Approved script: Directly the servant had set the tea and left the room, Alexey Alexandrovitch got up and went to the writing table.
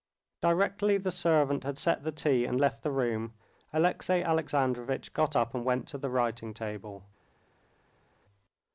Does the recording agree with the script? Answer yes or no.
yes